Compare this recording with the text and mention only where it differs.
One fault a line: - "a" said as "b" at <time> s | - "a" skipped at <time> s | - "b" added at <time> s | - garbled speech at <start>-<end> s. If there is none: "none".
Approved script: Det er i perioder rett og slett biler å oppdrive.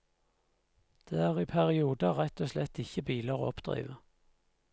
- "ikke" added at 2.9 s